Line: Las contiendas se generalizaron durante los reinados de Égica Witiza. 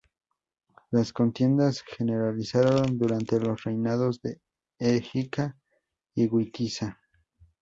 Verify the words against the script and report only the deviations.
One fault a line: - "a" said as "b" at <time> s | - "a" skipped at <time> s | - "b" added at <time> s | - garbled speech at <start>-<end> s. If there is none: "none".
- "y" added at 6.1 s